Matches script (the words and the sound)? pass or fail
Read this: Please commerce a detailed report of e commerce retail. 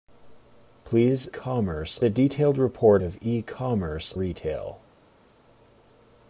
pass